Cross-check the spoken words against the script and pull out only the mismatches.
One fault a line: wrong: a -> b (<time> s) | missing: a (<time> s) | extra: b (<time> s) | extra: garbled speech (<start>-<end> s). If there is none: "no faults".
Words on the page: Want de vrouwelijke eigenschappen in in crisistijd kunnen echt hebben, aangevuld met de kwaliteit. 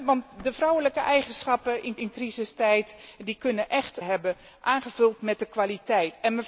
no faults